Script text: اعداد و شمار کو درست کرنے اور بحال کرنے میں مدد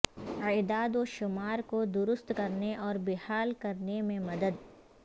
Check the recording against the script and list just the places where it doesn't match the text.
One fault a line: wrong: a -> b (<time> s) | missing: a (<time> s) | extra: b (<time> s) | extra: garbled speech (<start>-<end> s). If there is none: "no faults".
no faults